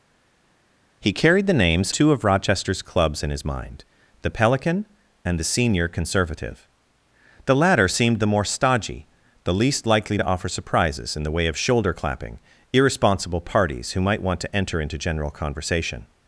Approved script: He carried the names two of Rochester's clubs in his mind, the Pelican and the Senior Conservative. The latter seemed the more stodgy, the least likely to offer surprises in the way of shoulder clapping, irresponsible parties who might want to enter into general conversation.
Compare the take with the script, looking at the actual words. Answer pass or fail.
pass